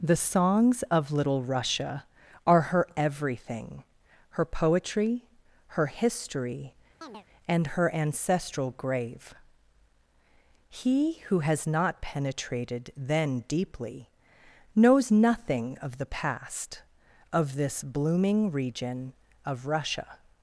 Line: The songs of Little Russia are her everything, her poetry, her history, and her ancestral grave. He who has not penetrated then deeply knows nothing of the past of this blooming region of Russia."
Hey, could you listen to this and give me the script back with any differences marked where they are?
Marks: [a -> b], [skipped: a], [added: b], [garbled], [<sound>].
The songs of Little Russia are her everything, her poetry, her history, [chirp] and her ancestral grave. He who has not penetrated then deeply knows nothing of the past of this blooming region of Russia."